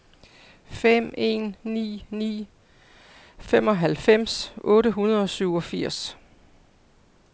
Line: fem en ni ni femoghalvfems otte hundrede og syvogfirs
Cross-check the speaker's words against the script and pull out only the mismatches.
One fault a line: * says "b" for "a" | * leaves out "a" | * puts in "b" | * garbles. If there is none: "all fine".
all fine